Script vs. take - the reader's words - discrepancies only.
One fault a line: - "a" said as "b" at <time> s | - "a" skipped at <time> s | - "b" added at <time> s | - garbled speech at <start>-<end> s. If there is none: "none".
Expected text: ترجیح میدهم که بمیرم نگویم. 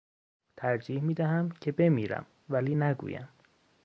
- "ولی" added at 2.5 s